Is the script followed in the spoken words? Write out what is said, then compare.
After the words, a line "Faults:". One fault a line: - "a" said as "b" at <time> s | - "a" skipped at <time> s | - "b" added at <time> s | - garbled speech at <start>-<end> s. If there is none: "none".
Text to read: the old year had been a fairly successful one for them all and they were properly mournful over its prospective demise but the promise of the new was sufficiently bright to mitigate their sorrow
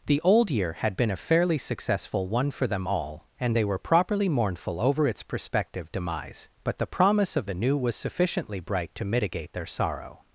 the old year had been a fairly successful one for them all and they were properly mournful over its prospective demise but the promise of the new was sufficiently bright to mitigate their sorrow
Faults:
none